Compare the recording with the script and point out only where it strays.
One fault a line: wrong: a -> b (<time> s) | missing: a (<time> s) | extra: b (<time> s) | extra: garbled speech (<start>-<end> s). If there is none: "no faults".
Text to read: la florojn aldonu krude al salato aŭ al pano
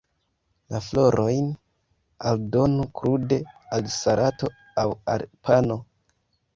no faults